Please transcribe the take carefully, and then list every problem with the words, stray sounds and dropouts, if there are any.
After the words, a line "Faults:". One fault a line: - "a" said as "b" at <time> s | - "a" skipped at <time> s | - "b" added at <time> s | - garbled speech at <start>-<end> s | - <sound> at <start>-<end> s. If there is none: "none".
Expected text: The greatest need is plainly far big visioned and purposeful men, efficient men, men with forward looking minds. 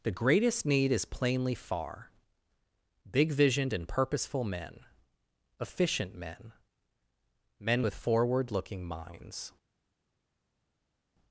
The greatest need is plainly far big visioned and purposeful men, efficient men, men with forward looking minds.
Faults:
none